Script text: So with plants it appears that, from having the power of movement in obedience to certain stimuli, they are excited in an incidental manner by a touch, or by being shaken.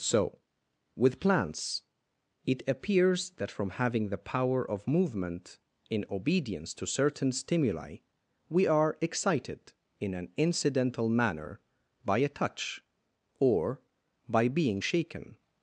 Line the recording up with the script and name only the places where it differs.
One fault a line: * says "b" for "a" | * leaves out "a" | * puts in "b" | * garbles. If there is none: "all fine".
* says "we" for "they"